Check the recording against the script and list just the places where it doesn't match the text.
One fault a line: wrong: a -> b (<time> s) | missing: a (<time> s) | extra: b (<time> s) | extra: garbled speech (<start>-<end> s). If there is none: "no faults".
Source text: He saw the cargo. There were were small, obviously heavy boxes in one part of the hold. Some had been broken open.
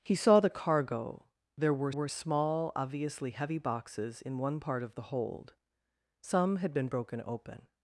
no faults